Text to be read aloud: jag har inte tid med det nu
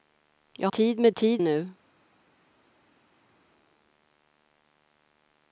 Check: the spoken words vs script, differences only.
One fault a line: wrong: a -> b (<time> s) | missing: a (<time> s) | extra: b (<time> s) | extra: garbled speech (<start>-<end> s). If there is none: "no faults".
missing: har inte (0.7 s)
wrong: det -> tid (1.1 s)